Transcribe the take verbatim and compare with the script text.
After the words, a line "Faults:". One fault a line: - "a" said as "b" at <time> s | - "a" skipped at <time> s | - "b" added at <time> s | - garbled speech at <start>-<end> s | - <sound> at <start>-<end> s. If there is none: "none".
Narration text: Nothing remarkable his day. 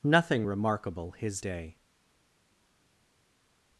Nothing remarkable his day.
Faults:
none